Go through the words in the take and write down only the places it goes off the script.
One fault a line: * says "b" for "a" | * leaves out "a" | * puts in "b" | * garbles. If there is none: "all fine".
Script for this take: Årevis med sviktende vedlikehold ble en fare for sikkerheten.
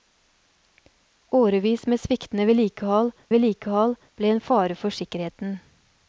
* puts in "vedlikehold"